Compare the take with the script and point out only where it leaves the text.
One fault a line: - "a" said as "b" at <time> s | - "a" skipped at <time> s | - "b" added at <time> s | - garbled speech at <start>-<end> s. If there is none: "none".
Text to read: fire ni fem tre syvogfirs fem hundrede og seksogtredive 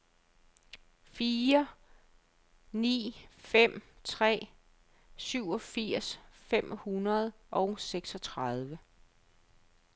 none